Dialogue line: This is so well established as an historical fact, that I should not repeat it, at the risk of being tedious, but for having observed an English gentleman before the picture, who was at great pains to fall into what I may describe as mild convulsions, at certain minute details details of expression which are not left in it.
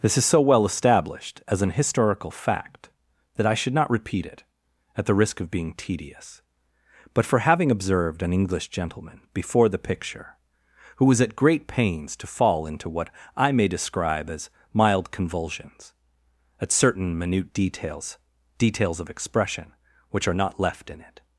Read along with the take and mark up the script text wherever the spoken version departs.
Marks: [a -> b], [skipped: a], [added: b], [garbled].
This is so well established as an historical fact, that I should not repeat it, at the risk of being tedious, but for having observed an English gentleman before the picture, who was at great pains to fall into what I may describe as mild convulsions, at certain minute details details of expression which are not left in it.